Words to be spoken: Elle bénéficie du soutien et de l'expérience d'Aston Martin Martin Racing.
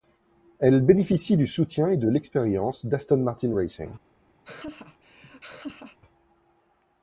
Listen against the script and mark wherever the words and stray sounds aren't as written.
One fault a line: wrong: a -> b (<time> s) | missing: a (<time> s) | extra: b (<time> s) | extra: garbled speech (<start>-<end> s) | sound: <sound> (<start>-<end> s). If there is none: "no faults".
missing: Martin (3.5 s)
sound: laugh (4.4-6.0 s)